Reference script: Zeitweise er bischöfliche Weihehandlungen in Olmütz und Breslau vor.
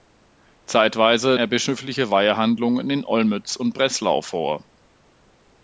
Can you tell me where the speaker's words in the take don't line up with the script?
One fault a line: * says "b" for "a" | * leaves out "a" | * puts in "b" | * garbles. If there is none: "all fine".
all fine